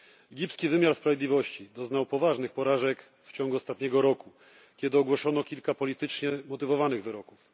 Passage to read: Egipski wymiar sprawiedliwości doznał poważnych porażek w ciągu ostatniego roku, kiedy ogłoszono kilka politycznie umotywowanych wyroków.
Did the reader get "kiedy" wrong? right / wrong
right